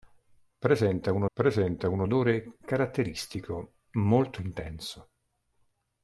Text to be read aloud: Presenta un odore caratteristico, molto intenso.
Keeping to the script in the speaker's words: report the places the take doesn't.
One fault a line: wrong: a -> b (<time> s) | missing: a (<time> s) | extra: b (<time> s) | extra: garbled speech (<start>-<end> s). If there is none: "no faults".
extra: presenta un (1.3 s)